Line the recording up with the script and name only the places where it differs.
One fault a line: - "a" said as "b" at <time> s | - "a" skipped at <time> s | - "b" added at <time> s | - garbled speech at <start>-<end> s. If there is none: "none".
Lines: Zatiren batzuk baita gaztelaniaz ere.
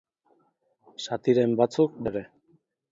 - "baita gaztelaniaz" skipped at 2.0 s